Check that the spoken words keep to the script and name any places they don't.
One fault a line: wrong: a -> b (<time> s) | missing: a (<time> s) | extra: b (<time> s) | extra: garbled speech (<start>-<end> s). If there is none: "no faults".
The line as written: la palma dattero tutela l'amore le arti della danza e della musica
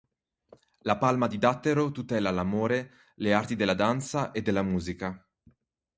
extra: di (1.3 s)